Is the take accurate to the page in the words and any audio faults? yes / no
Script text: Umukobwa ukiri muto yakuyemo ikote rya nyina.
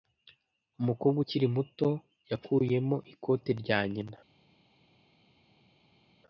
yes